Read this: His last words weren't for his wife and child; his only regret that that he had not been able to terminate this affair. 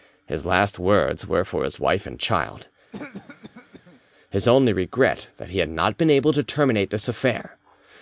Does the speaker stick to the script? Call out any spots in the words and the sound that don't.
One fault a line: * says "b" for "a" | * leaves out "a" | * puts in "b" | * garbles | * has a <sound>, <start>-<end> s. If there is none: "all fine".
* says "were" for "weren't"
* has a cough, 2.9-4.0 s
* leaves out "that"